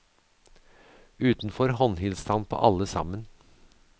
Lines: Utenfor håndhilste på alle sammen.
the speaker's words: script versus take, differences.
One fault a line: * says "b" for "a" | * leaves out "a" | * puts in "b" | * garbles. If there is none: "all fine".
* puts in "han"